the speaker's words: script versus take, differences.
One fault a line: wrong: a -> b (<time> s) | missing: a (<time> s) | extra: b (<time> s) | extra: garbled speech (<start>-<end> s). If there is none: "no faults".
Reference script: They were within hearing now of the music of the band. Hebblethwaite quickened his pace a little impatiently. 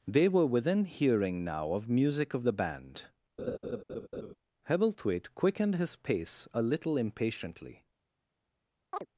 missing: the (1.9 s)